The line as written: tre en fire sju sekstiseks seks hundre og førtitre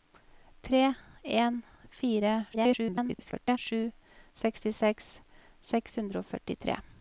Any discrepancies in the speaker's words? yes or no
yes